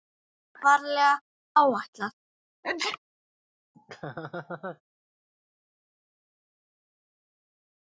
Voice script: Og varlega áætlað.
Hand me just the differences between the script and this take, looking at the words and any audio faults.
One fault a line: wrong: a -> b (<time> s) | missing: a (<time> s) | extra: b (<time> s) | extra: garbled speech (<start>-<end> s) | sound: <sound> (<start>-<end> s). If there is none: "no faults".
sound: sneeze (2.6-3.0 s)
sound: laugh (3.7-4.8 s)